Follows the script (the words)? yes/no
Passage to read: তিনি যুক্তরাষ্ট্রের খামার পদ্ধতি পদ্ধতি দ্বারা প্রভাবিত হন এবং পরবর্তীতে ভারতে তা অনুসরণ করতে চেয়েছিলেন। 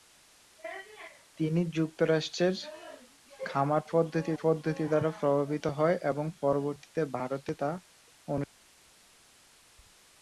yes